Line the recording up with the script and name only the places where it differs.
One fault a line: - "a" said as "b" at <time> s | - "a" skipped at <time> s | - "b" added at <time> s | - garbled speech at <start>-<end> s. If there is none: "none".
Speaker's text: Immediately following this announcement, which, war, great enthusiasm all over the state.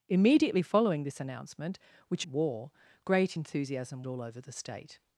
none